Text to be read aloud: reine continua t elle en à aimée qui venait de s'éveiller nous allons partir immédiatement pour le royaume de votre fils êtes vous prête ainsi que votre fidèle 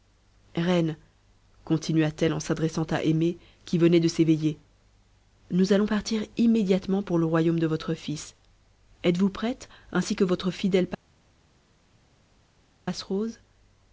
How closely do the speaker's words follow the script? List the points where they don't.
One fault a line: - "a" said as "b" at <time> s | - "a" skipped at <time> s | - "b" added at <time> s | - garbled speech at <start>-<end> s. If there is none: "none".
- "s'adressant" added at 2.4 s